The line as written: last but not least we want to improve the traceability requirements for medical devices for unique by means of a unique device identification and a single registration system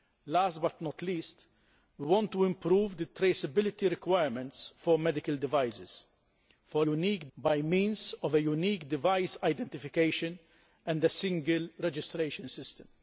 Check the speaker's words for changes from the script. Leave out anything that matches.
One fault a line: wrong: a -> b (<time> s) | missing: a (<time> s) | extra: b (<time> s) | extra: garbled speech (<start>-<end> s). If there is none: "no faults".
no faults